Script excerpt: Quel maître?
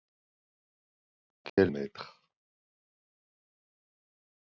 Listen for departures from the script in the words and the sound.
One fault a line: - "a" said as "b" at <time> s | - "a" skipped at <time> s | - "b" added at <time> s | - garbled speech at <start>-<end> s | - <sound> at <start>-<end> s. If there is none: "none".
- dropout at 1.5-1.6 s